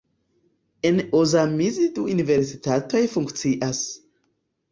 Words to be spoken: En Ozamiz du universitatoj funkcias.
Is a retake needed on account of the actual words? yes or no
no